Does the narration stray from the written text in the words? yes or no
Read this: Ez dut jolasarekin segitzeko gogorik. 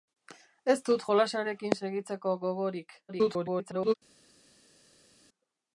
yes